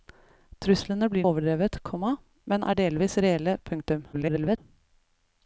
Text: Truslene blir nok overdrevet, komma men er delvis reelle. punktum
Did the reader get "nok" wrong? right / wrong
wrong